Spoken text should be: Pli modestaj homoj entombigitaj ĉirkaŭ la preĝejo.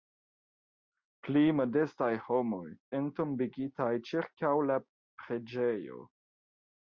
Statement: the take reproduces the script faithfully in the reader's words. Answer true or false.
true